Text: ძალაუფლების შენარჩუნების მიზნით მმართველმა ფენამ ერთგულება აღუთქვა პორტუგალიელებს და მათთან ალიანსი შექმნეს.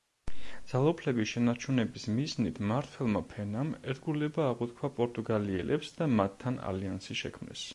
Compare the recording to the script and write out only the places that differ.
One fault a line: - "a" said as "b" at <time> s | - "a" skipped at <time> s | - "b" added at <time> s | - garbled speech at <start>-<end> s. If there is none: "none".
none